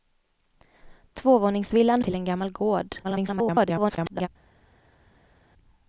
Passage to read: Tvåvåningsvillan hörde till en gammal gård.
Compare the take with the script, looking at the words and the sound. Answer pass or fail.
fail